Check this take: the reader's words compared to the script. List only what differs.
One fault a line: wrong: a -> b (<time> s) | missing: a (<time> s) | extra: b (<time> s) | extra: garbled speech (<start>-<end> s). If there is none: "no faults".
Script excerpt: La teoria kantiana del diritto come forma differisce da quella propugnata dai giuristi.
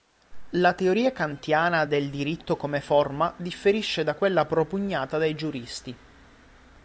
no faults